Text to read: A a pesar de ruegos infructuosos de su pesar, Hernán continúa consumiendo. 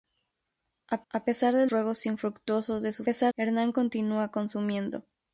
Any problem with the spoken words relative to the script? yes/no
no